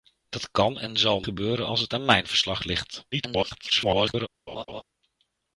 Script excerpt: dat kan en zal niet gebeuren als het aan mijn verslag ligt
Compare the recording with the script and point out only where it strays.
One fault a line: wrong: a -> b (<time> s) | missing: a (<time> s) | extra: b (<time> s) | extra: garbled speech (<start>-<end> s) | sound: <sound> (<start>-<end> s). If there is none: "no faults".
missing: niet (1.2 s)
extra: garbled speech (3.1-4.3 s)
sound: laugh (4.5-4.8 s)